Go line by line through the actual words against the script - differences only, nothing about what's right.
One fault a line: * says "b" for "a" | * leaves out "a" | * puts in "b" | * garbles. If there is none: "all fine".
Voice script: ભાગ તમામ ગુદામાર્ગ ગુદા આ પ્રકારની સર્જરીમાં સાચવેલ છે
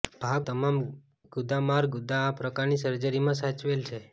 all fine